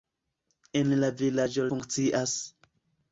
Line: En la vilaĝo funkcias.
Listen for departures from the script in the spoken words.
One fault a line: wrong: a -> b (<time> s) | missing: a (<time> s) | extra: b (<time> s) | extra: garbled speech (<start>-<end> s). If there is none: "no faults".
no faults